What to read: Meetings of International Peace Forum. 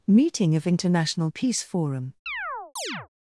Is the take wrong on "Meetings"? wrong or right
wrong